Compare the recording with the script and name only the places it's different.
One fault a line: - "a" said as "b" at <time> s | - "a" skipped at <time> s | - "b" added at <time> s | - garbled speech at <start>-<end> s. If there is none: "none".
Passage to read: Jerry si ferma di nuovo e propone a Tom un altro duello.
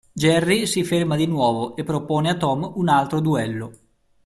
none